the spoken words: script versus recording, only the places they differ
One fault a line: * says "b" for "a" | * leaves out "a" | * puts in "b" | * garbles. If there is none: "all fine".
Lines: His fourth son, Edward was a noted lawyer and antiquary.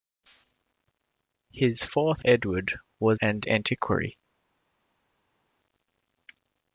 * leaves out "son"
* leaves out "a noted lawyer"